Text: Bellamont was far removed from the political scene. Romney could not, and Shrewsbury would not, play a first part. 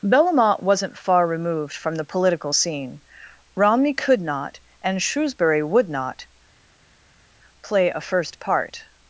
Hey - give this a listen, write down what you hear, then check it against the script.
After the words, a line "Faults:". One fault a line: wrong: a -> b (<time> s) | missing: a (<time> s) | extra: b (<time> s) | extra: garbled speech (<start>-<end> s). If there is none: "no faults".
Bellamont wasn't far removed from the political scene. Romney could not, and Shrewsbury would not, play a first part.
Faults:
wrong: was -> wasn't (0.6 s)